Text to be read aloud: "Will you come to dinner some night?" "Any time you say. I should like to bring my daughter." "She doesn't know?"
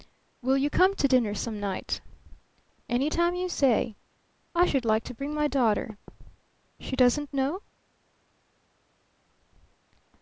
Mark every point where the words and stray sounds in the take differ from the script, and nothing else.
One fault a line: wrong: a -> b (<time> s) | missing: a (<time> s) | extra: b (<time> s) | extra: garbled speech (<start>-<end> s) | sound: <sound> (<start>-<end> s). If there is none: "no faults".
no faults